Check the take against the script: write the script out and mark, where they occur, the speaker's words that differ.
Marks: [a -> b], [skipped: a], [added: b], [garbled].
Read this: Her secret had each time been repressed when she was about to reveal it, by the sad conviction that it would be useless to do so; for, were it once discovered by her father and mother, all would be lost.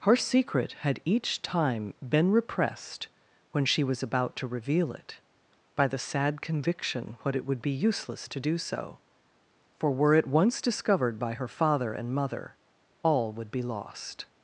Her secret had each time been repressed when she was about to reveal it, by the sad conviction [that -> what] it would be useless to do so; for, were it once discovered by her father and mother, all would be lost.